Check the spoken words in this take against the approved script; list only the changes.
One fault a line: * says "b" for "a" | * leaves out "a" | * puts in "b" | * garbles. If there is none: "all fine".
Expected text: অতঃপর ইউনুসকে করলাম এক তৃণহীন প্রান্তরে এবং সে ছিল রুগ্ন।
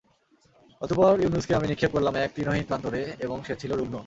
* puts in "আমি নিক্ষেপ"